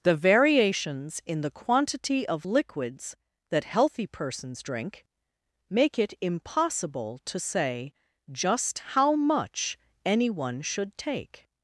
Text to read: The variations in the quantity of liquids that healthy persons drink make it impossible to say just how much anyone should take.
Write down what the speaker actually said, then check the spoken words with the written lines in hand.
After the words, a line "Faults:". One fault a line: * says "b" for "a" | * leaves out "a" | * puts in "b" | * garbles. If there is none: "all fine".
The variations in the quantity of liquids that healthy persons drink make it impossible to say just how much anyone should take.
Faults:
all fine